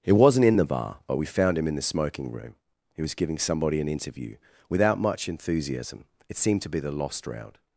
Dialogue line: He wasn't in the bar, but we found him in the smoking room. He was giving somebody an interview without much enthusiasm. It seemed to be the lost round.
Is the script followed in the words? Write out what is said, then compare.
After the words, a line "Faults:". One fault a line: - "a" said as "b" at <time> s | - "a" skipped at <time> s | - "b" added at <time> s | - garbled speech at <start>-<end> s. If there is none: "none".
He wasn't in the bar, but we found him in the smoking room. He was giving somebody an interview without much enthusiasm. It seemed to be the lost round.
Faults:
none